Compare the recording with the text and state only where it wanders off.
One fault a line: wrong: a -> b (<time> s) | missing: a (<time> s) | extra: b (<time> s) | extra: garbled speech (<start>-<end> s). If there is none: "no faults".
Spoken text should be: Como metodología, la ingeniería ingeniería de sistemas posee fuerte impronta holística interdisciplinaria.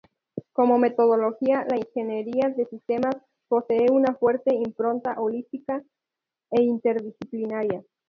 missing: ingeniería (2.5 s)
extra: una (3.9 s)
extra: e (6.5 s)